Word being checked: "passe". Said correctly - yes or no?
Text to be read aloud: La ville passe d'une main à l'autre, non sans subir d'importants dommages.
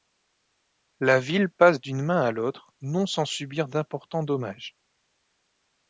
yes